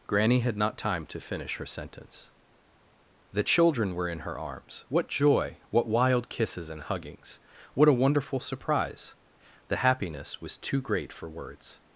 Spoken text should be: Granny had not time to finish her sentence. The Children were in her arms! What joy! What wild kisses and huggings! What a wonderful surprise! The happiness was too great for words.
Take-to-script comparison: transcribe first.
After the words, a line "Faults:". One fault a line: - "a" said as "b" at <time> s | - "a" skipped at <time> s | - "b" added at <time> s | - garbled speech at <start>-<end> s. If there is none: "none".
Granny had not time to finish her sentence. The Children were in her arms! What joy! What wild kisses and huggings! What a wonderful surprise! The happiness was too great for words.
Faults:
none